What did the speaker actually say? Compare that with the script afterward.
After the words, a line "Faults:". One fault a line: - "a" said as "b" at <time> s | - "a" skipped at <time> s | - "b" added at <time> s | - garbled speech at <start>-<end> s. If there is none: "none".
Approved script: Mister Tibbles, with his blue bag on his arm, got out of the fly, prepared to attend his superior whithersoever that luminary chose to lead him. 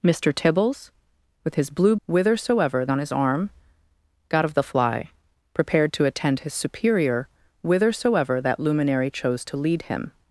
Mister Tibbles, with his blue whithersoever on his arm, got of the fly, prepared to attend his superior whithersoever that luminary chose to lead him.
Faults:
- "bag" said as "whithersoever" at 2.1 s
- "out" skipped at 4.4 s